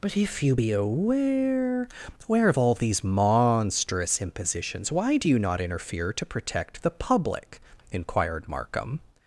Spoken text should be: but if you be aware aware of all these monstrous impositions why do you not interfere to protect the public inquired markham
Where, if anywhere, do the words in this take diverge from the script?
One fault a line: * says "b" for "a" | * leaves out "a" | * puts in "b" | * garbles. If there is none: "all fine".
all fine